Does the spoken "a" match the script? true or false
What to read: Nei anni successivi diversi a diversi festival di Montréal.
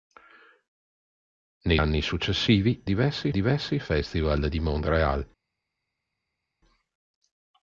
true